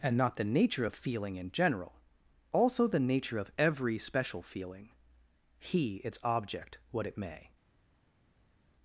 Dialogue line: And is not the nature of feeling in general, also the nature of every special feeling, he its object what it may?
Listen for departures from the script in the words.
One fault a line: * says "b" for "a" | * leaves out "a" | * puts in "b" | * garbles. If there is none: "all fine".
* leaves out "is"